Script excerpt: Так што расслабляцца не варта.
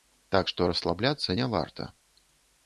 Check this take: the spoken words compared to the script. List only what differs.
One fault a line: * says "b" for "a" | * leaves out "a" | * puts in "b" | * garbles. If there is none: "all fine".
all fine